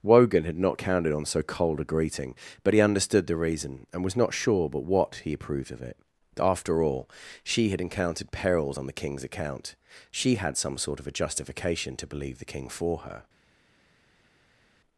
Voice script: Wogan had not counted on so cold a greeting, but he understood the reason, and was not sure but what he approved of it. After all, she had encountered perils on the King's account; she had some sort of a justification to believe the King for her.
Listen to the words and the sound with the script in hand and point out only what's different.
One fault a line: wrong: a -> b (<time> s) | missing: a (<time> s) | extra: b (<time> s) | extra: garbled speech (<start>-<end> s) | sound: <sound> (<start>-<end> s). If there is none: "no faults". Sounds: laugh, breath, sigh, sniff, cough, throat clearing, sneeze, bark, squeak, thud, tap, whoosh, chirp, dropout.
no faults